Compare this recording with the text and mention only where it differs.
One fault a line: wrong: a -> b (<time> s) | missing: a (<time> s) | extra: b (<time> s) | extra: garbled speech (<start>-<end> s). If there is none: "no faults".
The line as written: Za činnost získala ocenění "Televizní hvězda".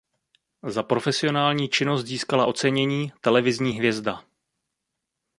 extra: profesionální (0.8 s)